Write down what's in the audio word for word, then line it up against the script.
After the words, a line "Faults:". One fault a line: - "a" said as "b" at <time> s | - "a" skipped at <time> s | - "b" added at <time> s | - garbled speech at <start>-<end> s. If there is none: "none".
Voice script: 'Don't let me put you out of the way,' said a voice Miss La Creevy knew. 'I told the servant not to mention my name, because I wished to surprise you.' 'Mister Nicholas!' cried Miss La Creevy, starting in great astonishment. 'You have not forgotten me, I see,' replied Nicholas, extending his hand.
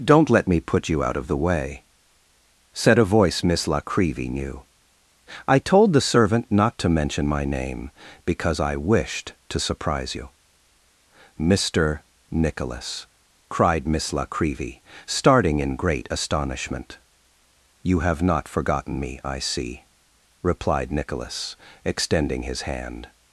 'Don't let me put you out of the way,' said a voice Miss La Creevy knew. 'I told the servant not to mention my name, because I wished to surprise you.' 'Mister Nicholas!' cried Miss La Creevy, starting in great astonishment. 'You have not forgotten me, I see,' replied Nicholas, extending his hand.
Faults:
none